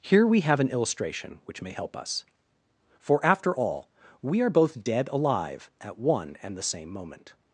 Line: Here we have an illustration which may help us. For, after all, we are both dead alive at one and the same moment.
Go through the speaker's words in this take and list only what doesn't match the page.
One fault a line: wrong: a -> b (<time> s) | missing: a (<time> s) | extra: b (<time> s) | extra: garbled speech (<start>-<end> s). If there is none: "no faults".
no faults